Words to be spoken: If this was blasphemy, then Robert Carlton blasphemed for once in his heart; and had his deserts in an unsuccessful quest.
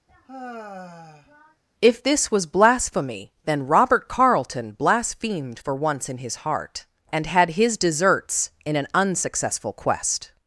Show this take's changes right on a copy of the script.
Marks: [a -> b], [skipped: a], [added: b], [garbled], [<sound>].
[sigh] If this was blasphemy, then Robert Carlton blasphemed for once in his heart; and had his deserts in an unsuccessful quest.